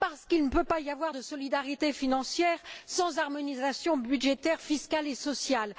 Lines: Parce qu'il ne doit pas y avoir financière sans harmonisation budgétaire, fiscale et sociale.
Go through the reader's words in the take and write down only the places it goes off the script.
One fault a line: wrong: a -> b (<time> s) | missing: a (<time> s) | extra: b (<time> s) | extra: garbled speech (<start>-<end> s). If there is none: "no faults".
wrong: doit -> peut (0.5 s)
extra: de solidarité (1.1 s)